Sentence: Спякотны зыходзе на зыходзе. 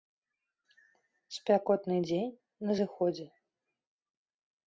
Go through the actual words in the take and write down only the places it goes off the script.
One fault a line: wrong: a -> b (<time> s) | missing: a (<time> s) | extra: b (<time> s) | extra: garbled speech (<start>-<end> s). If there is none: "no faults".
wrong: зыходзе -> дзень (2.1 s)